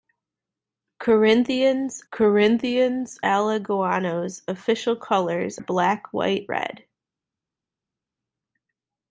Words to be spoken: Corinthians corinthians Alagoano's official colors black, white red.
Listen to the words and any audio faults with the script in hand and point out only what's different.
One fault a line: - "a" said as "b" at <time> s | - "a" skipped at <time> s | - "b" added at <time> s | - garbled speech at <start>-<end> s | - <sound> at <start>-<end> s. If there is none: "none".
none